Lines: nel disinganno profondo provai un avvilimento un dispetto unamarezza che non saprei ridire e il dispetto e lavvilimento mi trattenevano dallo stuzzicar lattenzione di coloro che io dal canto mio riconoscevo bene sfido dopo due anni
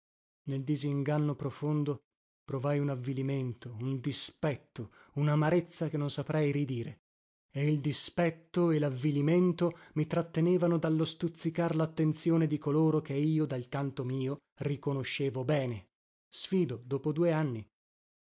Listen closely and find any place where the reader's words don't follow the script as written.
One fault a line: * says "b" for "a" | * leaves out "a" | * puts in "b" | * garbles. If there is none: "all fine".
all fine